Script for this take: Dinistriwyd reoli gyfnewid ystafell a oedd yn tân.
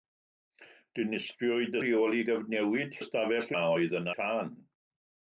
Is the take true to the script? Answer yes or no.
yes